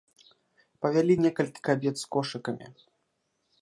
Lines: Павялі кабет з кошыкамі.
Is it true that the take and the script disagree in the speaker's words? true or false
true